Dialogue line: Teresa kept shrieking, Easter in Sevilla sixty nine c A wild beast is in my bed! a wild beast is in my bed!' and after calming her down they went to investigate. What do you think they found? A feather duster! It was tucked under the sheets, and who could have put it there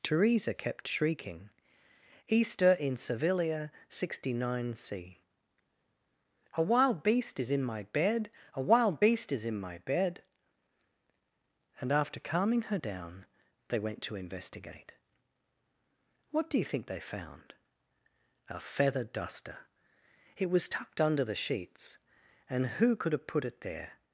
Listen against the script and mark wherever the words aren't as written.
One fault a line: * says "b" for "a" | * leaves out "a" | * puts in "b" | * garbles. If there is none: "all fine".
all fine